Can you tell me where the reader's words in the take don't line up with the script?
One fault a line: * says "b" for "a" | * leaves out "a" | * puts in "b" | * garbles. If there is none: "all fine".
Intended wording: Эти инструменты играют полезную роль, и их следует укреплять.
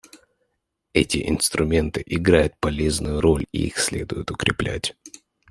all fine